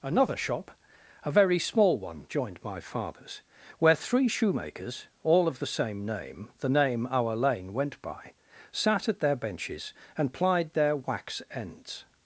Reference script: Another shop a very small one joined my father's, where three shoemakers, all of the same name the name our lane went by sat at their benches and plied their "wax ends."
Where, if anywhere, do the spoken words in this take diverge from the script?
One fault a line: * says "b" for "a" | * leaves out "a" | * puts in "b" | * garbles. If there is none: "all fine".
all fine